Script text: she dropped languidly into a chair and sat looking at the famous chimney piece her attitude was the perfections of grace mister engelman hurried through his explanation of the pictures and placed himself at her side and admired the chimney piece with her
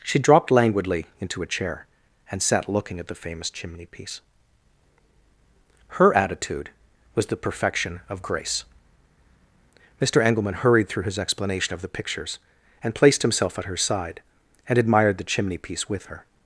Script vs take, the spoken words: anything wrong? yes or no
yes